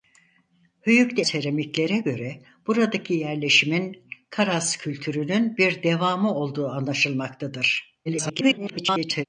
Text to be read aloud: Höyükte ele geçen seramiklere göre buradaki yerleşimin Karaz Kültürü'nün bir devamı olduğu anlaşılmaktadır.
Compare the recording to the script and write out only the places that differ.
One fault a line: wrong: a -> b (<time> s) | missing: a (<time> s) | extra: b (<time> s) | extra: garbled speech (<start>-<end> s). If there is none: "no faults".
missing: ele geçen (1.2 s)
extra: garbled speech (8.1-9.2 s)